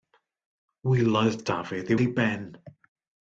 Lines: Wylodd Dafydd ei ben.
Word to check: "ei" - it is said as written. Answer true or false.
true